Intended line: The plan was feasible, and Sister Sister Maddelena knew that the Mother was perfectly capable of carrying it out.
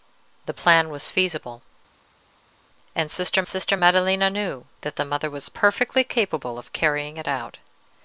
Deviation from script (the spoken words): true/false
false